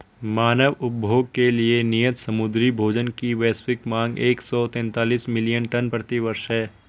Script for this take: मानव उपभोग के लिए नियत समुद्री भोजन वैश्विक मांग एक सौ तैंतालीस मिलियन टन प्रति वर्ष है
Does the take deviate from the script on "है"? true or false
false